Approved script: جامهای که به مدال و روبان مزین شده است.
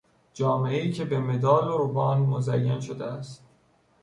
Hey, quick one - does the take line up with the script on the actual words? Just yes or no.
yes